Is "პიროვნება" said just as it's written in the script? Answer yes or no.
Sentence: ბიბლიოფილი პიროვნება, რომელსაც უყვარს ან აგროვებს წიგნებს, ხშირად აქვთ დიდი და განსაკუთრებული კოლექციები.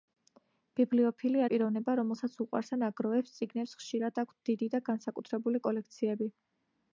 yes